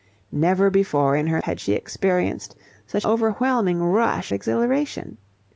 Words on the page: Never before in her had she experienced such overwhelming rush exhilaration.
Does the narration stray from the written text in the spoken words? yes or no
no